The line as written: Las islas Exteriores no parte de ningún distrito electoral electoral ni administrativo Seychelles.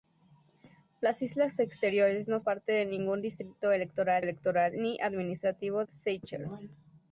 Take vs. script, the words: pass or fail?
pass